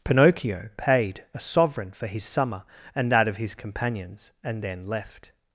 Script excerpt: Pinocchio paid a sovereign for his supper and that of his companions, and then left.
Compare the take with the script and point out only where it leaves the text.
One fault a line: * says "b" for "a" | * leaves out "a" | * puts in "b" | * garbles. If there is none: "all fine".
* says "summer" for "supper"